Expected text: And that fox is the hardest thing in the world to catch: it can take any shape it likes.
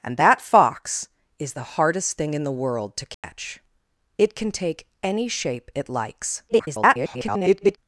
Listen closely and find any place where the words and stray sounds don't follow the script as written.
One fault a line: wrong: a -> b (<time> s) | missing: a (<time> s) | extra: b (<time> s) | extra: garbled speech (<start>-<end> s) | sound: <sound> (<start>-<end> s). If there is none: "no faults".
sound: dropout (3.1-3.2 s)
extra: garbled speech (6.5-7.8 s)